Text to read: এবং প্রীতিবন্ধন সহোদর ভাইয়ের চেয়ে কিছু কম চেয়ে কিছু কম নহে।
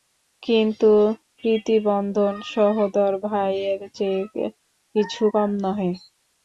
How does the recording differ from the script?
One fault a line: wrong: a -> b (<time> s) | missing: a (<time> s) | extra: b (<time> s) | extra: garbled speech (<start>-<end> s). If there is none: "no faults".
wrong: এবং -> কিন্তু (0.4 s)
missing: চেয়ে কিছু কম (5.5 s)